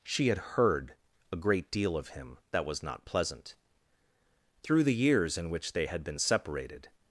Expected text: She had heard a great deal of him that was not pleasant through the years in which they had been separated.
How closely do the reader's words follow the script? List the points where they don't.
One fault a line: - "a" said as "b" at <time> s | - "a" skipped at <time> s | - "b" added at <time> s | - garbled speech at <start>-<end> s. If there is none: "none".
none